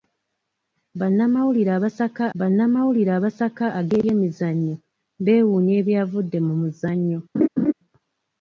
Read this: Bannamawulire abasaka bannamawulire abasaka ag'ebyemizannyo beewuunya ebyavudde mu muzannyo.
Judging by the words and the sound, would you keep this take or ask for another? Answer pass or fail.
fail